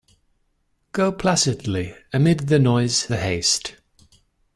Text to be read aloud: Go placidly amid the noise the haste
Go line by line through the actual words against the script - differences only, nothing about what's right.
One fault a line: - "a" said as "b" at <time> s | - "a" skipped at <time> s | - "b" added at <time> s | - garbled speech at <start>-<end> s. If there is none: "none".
none